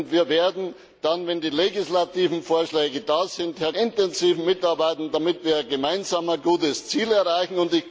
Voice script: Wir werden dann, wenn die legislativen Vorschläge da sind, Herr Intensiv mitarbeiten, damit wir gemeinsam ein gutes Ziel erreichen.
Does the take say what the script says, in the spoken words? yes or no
yes